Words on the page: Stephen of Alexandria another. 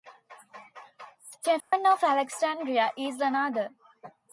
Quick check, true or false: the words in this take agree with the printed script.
false